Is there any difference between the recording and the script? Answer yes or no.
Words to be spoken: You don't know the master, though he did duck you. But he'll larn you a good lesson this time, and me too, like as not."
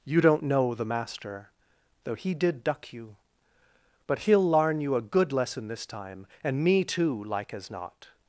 no